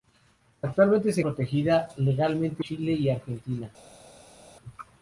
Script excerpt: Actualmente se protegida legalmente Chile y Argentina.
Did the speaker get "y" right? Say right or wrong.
right